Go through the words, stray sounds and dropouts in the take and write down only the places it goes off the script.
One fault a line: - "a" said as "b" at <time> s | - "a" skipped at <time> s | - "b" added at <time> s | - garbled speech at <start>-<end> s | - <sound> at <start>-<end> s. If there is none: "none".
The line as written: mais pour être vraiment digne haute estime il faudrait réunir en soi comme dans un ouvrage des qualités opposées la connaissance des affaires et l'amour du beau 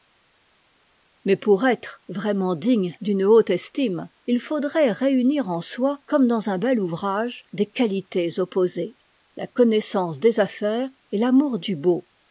- "d'une" added at 3.0 s
- "bel" added at 6.6 s